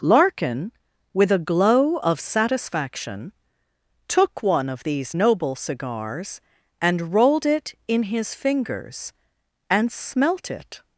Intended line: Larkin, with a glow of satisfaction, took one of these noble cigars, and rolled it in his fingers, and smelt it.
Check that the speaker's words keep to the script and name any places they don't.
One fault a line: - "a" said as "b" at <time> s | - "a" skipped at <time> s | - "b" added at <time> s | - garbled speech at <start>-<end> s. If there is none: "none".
none